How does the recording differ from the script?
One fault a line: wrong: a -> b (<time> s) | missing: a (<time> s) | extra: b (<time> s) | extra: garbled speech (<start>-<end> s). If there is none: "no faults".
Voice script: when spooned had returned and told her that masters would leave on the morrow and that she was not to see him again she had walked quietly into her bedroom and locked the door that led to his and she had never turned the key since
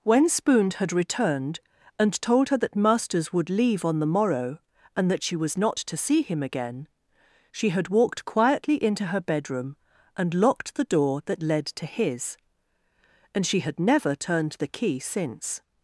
no faults